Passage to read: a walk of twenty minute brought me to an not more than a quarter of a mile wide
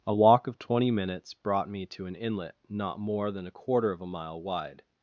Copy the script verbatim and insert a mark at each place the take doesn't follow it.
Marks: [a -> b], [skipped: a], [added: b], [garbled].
a walk of twenty [minute -> minutes] brought me to an [added: inlet] not more than a quarter of a mile wide